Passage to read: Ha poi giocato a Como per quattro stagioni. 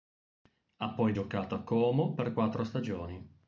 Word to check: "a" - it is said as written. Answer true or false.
true